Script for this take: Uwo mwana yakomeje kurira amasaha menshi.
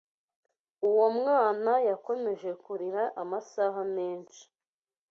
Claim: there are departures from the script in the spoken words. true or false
false